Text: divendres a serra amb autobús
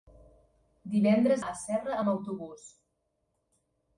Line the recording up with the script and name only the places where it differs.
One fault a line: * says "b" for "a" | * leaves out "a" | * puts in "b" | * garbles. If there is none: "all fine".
all fine